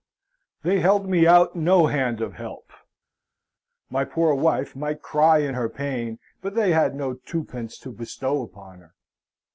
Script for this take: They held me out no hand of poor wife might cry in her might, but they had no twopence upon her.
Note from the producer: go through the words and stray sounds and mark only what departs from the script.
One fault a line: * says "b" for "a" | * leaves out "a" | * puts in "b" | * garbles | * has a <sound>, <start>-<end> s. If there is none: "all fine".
* puts in "help My"
* says "pain" for "might"
* puts in "to bestow"